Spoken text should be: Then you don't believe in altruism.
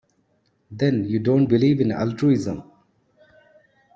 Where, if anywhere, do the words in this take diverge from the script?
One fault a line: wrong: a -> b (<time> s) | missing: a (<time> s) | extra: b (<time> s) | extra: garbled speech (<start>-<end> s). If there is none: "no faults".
no faults